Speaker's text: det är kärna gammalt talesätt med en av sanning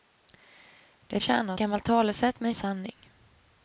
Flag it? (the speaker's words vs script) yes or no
no